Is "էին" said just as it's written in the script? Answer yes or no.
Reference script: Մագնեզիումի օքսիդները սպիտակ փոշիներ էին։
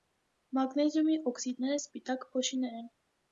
no